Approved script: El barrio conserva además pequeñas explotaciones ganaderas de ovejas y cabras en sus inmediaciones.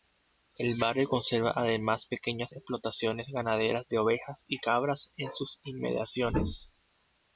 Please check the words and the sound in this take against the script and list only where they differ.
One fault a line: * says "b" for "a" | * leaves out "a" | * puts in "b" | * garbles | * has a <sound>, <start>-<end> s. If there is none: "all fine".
all fine